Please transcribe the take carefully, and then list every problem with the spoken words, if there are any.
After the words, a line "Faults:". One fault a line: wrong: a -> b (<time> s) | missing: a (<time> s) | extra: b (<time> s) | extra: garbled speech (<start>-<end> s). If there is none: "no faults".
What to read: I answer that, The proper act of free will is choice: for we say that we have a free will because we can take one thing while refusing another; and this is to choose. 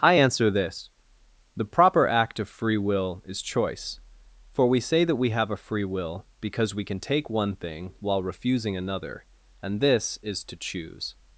I answer this, The proper act of free will is choice: for we say that we have a free will because we can take one thing while refusing another; and this is to choose.
Faults:
wrong: that -> this (0.5 s)